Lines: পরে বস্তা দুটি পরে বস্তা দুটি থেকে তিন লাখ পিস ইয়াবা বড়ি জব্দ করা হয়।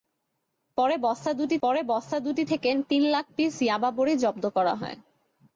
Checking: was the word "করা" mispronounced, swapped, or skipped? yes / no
no